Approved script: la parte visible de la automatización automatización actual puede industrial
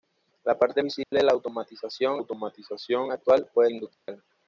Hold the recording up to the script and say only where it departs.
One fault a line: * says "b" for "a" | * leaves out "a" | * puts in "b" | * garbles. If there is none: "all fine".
all fine